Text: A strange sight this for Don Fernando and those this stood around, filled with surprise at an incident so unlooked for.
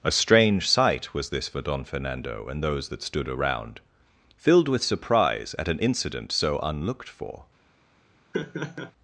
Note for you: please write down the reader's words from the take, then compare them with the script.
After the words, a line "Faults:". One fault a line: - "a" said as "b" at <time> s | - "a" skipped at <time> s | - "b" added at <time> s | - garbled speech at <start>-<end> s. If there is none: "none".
A strange sight was this for Don Fernando and those that stood around, filled with surprise at an incident so unlooked for.
Faults:
- "was" added at 1.1 s
- "this" said as "that" at 2.9 s